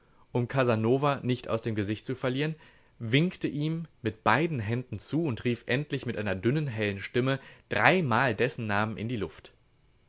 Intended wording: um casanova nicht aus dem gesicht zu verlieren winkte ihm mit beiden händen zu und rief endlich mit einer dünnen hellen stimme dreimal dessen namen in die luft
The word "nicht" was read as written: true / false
true